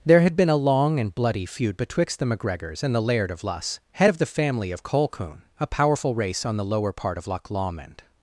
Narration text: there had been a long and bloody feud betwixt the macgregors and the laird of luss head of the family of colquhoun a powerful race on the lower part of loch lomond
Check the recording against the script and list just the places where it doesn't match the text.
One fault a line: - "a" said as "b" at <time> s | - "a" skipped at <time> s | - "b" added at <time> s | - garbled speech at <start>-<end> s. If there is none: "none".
none